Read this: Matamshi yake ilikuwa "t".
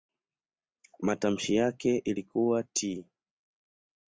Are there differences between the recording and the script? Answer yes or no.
no